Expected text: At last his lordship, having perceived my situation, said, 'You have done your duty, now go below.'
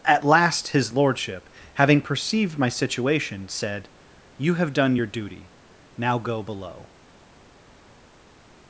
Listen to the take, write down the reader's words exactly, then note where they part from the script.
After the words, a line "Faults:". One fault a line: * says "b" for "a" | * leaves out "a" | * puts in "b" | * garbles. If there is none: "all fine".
At last his lordship, having perceived my situation, said, 'You have done your duty, now go below.'
Faults:
all fine